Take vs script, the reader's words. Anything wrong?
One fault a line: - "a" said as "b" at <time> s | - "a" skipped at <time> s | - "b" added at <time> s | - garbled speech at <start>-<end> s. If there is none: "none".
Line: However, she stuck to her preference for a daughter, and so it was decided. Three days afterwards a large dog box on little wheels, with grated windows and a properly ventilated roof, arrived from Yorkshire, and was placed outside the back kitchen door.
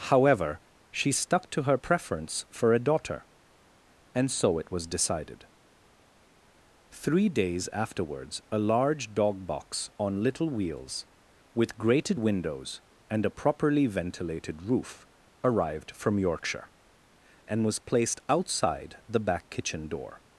none